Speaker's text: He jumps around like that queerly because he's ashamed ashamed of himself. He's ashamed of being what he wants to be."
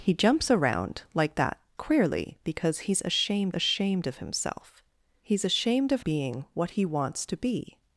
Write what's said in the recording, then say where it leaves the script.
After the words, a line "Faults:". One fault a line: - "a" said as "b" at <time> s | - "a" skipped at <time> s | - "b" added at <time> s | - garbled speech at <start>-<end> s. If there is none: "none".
He jumps around like that queerly because he's ashamed ashamed of himself. He's ashamed of being what he wants to be."
Faults:
none